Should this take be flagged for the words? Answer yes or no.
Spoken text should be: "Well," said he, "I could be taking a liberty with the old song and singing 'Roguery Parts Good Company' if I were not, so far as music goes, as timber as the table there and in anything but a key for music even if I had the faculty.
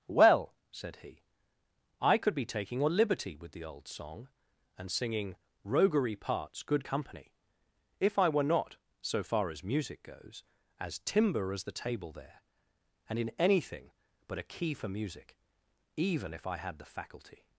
no